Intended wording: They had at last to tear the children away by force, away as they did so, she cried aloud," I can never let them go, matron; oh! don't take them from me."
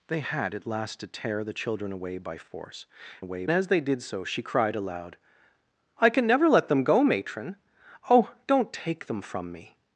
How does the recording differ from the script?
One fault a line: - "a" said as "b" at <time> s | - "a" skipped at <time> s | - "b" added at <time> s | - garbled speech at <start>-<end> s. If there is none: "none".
none